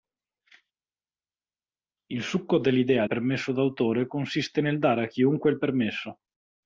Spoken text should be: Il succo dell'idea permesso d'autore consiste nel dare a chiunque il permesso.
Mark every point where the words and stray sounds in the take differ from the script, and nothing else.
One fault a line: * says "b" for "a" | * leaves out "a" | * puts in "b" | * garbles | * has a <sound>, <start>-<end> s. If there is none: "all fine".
all fine